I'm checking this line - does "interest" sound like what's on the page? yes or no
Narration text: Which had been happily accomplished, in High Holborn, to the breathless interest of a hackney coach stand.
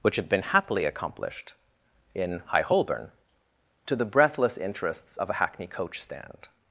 no